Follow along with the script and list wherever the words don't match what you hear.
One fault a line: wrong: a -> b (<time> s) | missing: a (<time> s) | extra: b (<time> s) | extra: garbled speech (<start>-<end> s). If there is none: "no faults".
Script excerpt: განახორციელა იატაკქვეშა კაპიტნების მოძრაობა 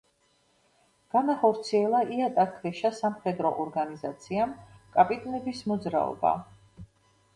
extra: სამხედრო ორგანიზაციამ (3.0 s)